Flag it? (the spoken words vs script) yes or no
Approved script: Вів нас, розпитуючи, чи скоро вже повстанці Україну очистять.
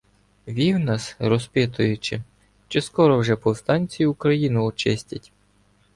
no